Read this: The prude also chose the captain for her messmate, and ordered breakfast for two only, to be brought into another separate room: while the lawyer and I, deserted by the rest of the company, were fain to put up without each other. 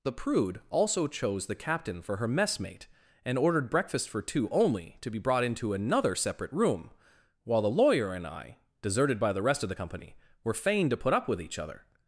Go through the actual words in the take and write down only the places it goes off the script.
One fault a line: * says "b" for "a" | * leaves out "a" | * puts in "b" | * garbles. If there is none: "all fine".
* says "with" for "without"